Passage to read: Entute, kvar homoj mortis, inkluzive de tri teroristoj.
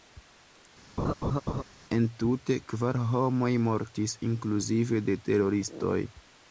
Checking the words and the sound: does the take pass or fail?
fail